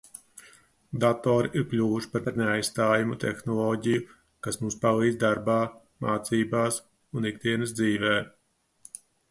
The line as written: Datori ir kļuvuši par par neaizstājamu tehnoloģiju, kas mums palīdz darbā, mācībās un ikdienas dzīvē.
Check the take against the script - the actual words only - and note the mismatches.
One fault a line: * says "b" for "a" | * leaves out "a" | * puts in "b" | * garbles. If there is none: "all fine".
all fine